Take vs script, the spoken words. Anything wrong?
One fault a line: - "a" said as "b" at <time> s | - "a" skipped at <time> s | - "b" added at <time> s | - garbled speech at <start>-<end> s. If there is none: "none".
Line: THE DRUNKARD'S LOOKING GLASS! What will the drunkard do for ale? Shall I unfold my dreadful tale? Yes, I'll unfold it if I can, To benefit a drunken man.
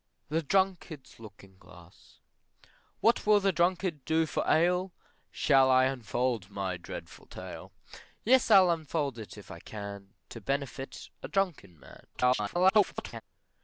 - garbled speech at 12.1-13.2 s